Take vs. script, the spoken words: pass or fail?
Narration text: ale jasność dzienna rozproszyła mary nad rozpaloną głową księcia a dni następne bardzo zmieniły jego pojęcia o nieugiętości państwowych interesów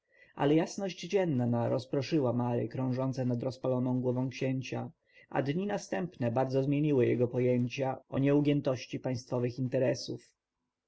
fail